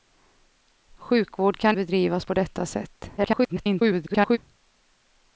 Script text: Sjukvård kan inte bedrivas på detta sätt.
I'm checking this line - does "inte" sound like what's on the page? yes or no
no